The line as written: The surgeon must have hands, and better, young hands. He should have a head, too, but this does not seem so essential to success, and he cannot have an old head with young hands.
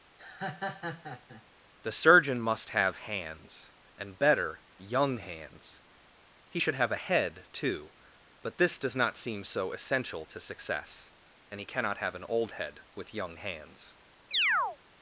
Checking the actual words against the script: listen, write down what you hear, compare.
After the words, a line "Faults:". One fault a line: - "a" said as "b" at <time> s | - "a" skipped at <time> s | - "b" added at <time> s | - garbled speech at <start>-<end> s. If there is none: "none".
The surgeon must have hands, and better, young hands. He should have a head, too, but this does not seem so essential to success, and he cannot have an old head with young hands.
Faults:
none